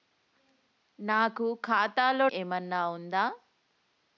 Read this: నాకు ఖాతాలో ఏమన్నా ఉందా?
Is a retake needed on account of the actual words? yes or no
no